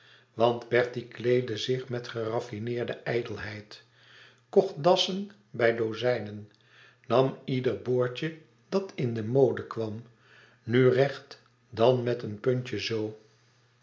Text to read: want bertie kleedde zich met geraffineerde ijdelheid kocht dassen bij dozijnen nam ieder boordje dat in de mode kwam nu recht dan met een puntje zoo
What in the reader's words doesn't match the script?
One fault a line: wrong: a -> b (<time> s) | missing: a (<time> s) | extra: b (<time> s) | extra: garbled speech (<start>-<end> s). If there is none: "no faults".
no faults